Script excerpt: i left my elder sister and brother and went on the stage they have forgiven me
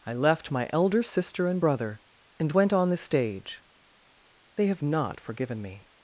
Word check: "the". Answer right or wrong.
right